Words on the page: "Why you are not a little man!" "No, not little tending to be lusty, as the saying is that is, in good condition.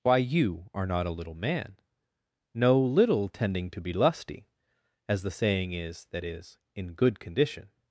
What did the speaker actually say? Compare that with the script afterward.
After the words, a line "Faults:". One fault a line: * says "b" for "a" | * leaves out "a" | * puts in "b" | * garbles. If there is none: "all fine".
"Why you are not a little man!" "No, little tending to be lusty, as the saying is that is, in good condition.
Faults:
* leaves out "not"